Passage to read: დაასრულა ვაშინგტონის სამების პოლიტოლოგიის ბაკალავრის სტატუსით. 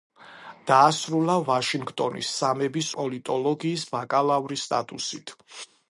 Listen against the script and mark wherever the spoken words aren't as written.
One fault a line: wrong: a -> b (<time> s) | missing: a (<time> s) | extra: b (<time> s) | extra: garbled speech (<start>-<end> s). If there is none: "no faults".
no faults